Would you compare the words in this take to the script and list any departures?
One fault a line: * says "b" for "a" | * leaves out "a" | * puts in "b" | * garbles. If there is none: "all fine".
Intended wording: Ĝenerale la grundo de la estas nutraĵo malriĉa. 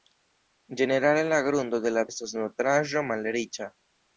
all fine